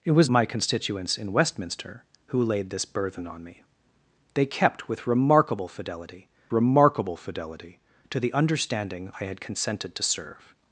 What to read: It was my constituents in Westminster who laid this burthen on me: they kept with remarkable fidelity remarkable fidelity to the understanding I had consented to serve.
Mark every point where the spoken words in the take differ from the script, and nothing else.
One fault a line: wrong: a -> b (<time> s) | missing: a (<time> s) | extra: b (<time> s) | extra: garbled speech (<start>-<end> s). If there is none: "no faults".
no faults